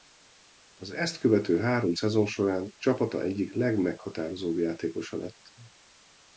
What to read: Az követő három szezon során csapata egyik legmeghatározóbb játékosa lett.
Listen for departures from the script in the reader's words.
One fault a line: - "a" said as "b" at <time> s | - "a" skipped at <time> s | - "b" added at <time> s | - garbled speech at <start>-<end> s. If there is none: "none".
- "ezt" added at 0.9 s